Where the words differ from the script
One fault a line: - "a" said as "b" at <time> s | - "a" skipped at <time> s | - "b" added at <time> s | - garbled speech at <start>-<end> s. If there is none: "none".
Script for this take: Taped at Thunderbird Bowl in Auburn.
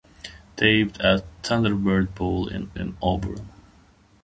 - "in" added at 2.7 s